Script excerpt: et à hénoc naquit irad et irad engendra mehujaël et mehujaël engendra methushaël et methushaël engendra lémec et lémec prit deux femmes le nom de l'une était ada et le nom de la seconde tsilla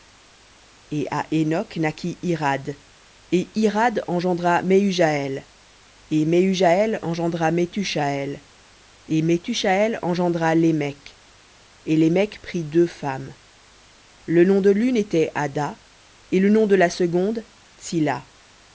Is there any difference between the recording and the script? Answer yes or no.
no